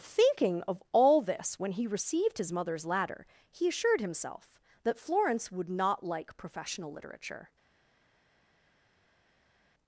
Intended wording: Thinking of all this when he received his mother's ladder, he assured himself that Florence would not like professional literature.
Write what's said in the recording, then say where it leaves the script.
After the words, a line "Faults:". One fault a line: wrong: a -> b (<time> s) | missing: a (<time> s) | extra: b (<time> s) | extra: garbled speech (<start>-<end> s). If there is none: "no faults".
Thinking of all this when he received his mother's ladder, he assured himself that Florence would not like professional literature.
Faults:
no faults